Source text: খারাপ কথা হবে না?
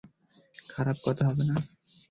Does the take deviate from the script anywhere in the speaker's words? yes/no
no